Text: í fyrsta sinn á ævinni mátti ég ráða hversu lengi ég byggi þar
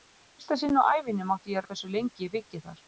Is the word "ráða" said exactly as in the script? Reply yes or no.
no